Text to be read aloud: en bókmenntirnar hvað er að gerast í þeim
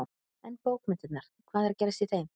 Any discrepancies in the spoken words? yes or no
no